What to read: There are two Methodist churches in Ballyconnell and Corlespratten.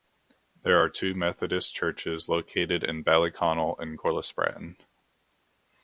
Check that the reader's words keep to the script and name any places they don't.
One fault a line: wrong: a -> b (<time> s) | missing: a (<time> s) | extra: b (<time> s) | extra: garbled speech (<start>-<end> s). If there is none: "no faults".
extra: located (2.3 s)